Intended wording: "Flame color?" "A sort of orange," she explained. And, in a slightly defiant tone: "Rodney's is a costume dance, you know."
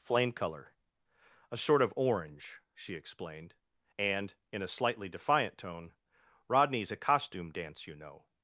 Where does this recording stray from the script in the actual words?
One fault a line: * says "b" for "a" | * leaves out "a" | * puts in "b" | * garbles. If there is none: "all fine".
* leaves out "is"